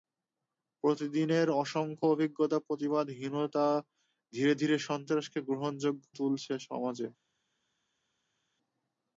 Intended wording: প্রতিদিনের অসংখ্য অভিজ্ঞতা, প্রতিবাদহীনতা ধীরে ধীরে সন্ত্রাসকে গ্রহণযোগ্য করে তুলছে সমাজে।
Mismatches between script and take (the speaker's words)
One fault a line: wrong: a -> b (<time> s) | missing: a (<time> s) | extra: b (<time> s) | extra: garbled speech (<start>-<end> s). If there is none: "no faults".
missing: করে (6.0 s)